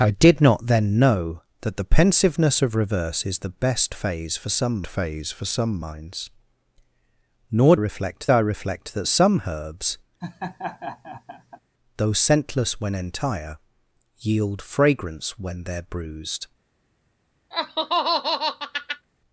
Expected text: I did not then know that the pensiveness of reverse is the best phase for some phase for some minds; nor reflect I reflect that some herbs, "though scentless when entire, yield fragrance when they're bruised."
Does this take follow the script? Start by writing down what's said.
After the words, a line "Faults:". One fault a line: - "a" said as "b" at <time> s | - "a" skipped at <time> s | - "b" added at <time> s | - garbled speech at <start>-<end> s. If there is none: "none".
I did not then know that the pensiveness of reverse is the best phase for some phase for some minds; nor reflect I reflect that some herbs, "though scentless when entire, yield fragrance when they're bruised."
Faults:
none